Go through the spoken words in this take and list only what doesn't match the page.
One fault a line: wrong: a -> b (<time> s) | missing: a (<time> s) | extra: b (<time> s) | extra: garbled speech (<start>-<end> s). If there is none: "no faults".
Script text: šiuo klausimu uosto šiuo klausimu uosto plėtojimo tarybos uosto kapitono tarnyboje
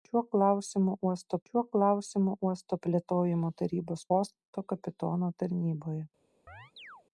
no faults